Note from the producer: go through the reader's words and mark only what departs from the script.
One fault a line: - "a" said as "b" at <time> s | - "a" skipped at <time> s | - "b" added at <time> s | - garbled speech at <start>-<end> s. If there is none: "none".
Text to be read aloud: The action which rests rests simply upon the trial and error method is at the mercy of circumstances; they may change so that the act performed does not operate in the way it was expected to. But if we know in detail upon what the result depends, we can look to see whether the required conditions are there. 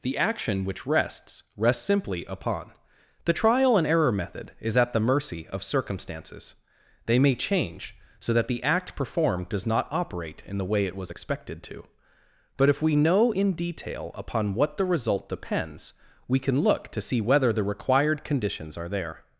none